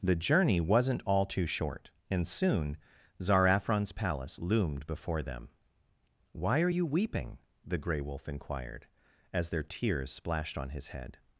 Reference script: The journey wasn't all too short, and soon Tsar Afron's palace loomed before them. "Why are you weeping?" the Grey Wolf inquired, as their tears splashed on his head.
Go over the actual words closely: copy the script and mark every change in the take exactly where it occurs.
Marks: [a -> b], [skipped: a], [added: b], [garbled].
The journey wasn't all too short, and soon Tsar Afron's palace loomed before them. "Why are you weeping?" the Grey Wolf inquired, as their tears splashed on his head.